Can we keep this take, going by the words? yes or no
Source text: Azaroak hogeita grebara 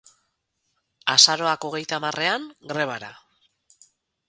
no